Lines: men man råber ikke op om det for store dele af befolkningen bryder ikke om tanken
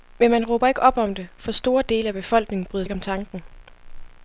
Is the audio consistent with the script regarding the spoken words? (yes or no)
yes